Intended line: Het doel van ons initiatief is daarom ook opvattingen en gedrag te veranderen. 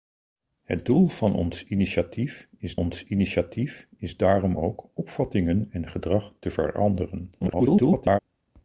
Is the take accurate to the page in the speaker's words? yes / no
no